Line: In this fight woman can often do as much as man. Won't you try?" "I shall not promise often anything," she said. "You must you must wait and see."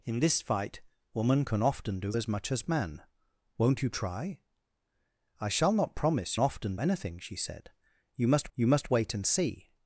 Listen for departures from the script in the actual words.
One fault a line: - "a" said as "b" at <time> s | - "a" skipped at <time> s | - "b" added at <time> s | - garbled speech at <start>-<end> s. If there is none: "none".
none